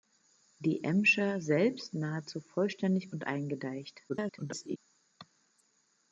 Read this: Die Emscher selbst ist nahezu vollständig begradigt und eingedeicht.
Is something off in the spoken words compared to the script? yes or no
yes